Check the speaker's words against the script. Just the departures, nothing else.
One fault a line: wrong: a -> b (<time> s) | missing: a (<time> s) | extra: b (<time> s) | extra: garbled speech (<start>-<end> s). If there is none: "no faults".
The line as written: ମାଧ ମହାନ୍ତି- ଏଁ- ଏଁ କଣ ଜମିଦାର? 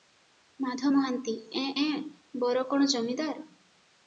extra: ବର (2.4 s)